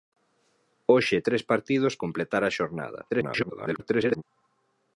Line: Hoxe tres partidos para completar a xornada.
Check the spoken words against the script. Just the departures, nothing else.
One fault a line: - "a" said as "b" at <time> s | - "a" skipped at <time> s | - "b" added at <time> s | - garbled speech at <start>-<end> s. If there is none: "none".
- "para" skipped at 1.9 s
- garbled speech at 3.1-4.2 s